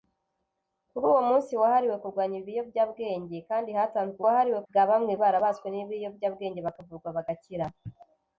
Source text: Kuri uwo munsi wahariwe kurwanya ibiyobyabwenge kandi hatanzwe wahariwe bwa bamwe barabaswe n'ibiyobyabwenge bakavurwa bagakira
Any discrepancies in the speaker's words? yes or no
no